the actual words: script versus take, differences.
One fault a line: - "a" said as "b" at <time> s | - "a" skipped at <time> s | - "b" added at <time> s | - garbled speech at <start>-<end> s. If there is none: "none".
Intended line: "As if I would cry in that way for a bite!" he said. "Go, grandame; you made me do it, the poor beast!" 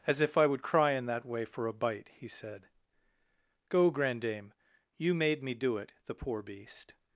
none